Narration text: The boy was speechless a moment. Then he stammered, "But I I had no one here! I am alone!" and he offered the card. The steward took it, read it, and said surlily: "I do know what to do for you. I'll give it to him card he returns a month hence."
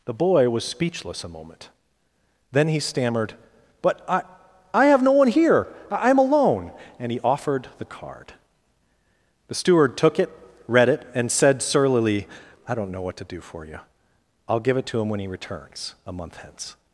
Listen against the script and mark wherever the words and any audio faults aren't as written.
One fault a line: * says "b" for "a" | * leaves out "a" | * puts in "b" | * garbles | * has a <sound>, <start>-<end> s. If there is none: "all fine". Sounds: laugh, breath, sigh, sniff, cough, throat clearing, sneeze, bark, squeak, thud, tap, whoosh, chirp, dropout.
* says "have" for "had"
* says "don't" for "do"
* says "when" for "card"